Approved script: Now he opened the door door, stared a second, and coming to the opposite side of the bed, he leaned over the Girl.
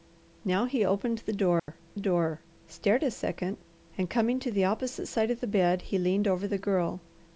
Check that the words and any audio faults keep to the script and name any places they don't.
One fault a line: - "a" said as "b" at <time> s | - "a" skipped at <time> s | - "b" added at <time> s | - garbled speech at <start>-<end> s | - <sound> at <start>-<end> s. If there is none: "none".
- dropout at 1.6-1.7 s